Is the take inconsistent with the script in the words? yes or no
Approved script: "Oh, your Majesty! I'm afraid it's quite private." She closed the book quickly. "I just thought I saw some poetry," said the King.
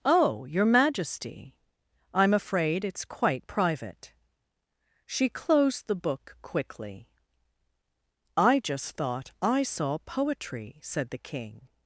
yes